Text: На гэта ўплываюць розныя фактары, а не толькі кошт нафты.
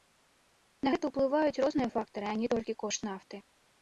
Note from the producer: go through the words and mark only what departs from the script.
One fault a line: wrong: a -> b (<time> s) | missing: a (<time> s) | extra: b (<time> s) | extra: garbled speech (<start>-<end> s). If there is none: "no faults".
no faults